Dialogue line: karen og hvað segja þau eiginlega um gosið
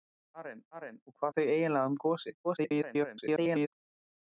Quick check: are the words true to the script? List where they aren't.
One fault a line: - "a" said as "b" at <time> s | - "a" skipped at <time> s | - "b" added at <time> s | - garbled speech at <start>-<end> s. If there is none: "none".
- "karen" added at 0.7 s
- "segja" skipped at 1.3 s
- garbled speech at 2.4-3.7 s